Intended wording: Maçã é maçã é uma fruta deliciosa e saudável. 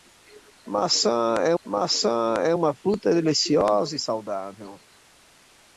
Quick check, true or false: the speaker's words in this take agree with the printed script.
true